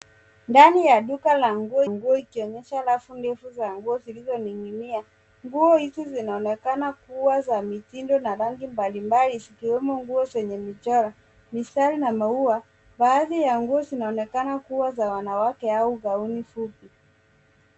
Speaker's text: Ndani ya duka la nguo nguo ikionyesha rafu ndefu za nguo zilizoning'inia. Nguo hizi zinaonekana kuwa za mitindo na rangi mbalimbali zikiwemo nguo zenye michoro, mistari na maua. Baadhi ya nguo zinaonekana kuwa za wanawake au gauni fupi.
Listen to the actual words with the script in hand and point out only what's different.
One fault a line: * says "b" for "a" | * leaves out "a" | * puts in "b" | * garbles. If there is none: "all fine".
all fine